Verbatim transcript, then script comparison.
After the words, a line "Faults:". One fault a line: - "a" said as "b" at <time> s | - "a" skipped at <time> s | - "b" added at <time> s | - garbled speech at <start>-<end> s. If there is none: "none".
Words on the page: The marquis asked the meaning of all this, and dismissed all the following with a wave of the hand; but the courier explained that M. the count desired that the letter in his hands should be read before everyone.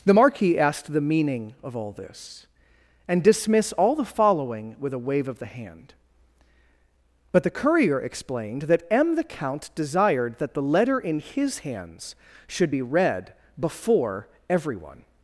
The marquis asked the meaning of all this, and dismiss all the following with a wave of the hand; but the courier explained that M. the count desired that the letter in his hands should be read before everyone.
Faults:
- "dismissed" said as "dismiss" at 3.2 s